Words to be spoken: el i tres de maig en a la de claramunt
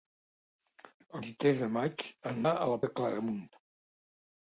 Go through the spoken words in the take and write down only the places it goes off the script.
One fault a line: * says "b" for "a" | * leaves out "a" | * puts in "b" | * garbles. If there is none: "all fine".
all fine